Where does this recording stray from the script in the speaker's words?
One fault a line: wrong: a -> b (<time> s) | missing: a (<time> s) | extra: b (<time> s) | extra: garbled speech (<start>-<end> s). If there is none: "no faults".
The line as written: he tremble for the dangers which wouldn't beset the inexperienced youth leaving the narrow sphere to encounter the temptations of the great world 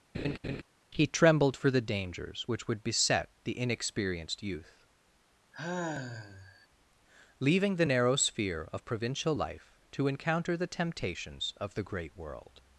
wrong: tremble -> trembled (1.1 s)
wrong: wouldn't -> would (2.7 s)
extra: of provincial life (8.7 s)